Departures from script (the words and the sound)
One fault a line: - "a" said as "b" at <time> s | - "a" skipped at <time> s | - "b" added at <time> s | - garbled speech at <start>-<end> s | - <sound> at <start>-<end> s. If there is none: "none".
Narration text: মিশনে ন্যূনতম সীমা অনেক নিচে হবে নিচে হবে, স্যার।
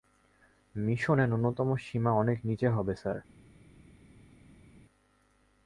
- "নিচে হবে" skipped at 2.9 s